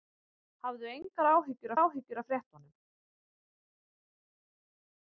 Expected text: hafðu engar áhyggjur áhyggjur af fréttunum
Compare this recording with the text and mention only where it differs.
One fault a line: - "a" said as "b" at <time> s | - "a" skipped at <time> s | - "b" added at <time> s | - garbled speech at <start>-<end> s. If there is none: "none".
none